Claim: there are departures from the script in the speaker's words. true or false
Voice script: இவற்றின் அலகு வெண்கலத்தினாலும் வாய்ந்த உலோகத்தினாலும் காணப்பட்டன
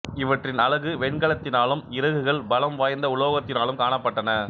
true